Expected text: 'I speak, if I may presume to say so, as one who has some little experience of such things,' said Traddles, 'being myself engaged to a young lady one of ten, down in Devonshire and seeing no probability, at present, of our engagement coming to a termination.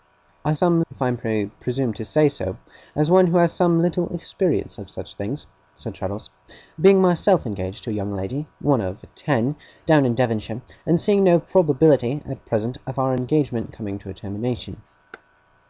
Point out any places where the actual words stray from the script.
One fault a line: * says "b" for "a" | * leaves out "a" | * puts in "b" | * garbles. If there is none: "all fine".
* says "some" for "speak"